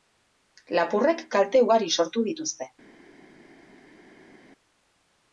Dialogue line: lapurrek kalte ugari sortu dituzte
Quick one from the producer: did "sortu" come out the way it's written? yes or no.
yes